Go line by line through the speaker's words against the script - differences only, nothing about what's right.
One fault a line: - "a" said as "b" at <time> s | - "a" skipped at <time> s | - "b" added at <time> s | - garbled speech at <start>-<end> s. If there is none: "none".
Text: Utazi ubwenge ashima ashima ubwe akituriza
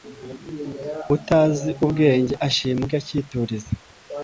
- "ashima" skipped at 2.8 s